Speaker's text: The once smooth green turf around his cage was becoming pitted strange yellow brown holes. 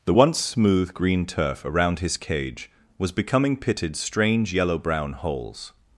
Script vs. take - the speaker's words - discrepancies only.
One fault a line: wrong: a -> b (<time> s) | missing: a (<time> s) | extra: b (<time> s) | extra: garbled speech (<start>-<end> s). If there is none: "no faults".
no faults